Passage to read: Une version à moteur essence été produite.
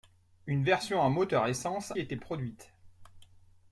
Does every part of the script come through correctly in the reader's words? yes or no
yes